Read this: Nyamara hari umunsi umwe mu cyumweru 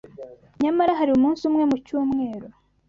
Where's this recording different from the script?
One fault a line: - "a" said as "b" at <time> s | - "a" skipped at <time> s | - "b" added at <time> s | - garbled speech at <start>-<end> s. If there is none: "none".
none